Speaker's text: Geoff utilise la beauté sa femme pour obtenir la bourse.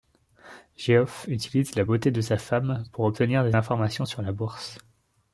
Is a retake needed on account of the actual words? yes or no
yes